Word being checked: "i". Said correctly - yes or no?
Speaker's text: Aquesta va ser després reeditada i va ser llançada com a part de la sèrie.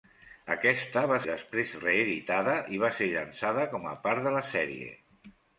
yes